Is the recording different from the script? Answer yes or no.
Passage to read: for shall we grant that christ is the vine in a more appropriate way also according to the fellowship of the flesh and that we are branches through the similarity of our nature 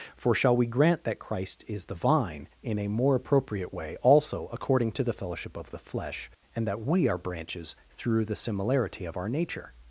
no